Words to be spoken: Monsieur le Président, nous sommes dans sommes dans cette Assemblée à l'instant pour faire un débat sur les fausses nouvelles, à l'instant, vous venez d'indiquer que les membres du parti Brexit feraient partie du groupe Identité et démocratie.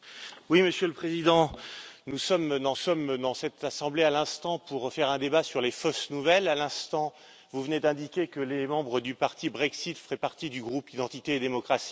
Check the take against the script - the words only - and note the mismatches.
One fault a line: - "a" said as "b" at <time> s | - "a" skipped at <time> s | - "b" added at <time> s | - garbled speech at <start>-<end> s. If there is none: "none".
none